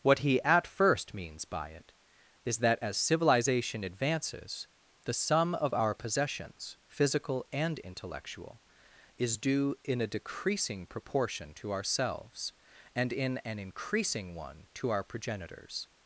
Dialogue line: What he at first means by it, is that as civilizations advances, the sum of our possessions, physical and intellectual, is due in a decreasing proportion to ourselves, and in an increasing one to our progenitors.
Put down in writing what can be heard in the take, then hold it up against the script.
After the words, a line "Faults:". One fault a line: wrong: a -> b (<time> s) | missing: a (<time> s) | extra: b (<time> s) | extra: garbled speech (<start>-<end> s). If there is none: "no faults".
What he at first means by it, is that as civilization advances, the sum of our possessions, physical and intellectual, is due in a decreasing proportion to ourselves, and in an increasing one to our progenitors.
Faults:
wrong: civilizations -> civilization (3.0 s)